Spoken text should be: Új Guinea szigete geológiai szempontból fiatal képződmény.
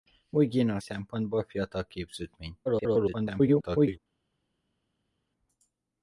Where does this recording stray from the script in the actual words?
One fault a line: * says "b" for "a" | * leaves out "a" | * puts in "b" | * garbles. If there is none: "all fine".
* leaves out "szigete geológiai"
* garbles